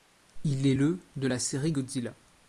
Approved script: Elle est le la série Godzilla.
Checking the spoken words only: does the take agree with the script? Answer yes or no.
no